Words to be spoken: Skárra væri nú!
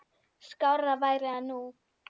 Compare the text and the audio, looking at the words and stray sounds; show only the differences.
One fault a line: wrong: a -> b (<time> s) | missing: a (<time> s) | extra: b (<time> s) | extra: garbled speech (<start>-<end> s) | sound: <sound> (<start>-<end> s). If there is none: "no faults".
extra: það (1.3 s)